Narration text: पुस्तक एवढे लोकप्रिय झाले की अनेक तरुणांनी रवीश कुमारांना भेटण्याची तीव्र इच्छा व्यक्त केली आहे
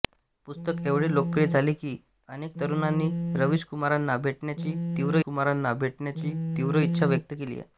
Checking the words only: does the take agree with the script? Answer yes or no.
no